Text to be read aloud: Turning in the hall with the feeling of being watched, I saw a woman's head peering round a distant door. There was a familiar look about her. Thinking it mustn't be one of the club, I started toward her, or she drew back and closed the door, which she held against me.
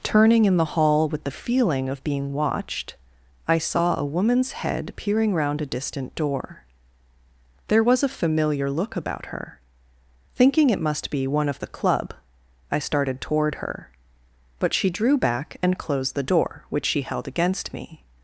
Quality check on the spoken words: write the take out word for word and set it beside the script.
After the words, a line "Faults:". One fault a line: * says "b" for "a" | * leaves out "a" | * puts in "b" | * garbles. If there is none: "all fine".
Turning in the hall with the feeling of being watched, I saw a woman's head peering round a distant door. There was a familiar look about her. Thinking it must be one of the club, I started toward her, but she drew back and closed the door, which she held against me.
Faults:
* says "must" for "mustn't"
* says "but" for "or"